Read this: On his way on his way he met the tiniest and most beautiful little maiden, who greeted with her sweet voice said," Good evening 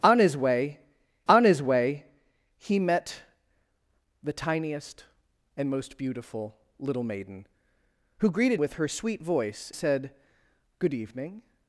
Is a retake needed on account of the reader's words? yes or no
no